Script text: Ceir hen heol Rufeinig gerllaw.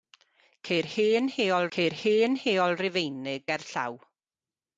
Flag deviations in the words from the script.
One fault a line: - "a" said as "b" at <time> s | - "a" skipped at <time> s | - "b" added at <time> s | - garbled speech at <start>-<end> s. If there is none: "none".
- "ceir hen heol" added at 1.8 s